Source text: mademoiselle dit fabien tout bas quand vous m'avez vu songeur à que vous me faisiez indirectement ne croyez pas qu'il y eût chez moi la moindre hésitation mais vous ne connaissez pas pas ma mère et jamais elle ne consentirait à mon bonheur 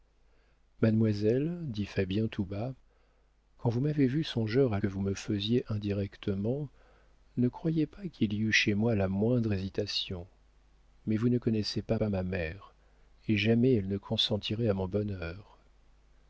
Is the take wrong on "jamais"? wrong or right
right